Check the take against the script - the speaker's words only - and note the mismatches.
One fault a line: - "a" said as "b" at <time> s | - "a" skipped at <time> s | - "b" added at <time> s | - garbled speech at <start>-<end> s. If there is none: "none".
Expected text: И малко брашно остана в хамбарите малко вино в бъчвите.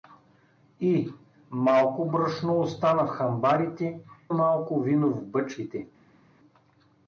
none